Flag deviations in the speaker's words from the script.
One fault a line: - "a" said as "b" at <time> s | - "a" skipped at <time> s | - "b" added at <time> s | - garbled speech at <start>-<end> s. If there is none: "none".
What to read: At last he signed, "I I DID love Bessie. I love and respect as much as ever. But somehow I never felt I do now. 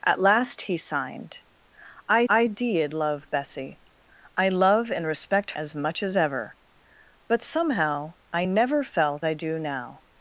none